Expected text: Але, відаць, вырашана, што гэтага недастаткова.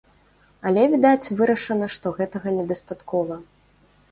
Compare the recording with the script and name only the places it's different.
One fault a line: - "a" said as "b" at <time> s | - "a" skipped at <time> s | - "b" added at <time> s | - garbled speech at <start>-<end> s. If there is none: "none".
none